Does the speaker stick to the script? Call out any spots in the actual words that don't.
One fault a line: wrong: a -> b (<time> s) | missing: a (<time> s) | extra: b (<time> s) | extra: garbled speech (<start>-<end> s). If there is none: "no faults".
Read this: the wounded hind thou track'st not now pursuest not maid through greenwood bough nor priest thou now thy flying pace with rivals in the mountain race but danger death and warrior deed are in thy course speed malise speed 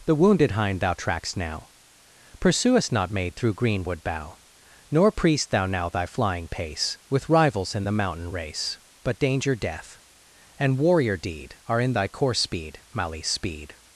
missing: not (1.4 s)